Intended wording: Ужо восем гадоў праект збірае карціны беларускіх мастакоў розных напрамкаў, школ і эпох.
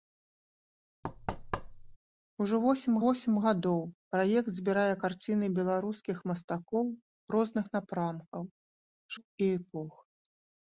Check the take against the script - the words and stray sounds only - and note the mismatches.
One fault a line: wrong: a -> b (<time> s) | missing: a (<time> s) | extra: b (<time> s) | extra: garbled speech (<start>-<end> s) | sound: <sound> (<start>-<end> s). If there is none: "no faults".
sound: thud (1.0-2.0 s)
extra: восем (3.0 s)
missing: школ (8.4 s)